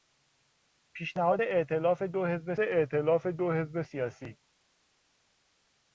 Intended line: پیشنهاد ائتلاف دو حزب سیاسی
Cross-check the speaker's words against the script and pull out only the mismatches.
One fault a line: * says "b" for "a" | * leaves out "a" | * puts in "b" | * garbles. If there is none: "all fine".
* puts in "ائتلاف دو حزب"